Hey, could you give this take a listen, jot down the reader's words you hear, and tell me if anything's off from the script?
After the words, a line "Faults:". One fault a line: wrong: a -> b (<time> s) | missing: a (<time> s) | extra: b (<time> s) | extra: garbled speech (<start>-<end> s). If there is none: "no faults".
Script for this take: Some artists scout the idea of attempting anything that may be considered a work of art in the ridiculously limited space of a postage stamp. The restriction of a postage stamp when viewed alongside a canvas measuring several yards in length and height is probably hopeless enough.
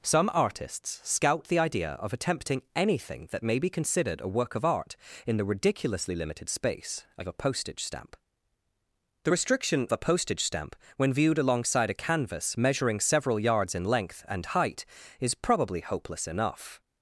Some artists scout the idea of attempting anything that may be considered a work of art in the ridiculously limited space of a postage stamp. The restriction a postage stamp when viewed alongside a canvas measuring several yards in length and height is probably hopeless enough.
Faults:
missing: of (9.9 s)